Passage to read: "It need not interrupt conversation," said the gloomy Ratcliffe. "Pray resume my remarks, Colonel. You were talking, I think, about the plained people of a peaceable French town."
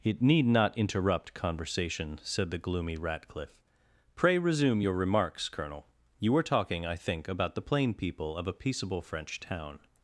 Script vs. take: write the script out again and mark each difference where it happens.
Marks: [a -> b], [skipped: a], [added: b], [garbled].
"It need not interrupt conversation," said the gloomy Ratcliffe. "Pray resume [my -> your] remarks, Colonel. You were talking, I think, about the [plained -> plain] people of a peaceable French town."